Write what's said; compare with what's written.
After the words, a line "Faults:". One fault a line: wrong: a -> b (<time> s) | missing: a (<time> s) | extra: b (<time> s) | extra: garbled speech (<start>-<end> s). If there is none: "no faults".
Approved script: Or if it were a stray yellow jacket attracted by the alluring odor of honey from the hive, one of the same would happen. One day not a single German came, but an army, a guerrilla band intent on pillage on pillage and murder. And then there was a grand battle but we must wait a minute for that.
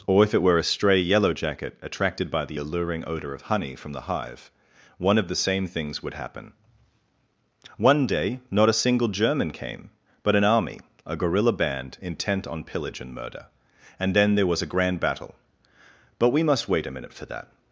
Or if it were a stray yellow jacket attracted by the alluring odor of honey from the hive, one of the same things would happen. One day not a single German came, but an army, a guerrilla band intent on pillage and murder. And then there was a grand battle but we must wait a minute for that.
Faults:
extra: things (5.7 s)
missing: on pillage (13.0 s)